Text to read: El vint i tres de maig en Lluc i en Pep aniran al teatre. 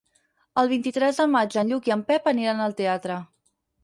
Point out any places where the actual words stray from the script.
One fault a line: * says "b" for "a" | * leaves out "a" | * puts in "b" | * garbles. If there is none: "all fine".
all fine